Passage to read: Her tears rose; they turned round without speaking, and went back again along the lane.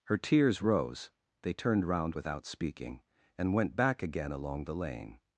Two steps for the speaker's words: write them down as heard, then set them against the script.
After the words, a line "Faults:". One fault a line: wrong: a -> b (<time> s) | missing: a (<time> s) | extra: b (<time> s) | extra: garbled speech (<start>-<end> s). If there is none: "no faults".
Her tears rose; they turned round without speaking, and went back again along the lane.
Faults:
no faults